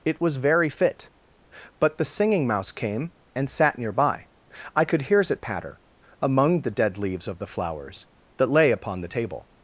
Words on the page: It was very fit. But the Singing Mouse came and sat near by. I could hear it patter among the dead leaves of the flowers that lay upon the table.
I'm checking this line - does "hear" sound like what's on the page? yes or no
no